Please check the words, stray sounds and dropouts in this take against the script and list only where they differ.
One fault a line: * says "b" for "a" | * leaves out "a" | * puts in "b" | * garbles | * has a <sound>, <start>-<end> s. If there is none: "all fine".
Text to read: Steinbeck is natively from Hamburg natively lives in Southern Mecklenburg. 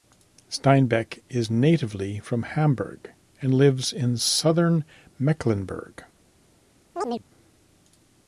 * says "and" for "natively"
* has a chirp, 7.0-7.2 s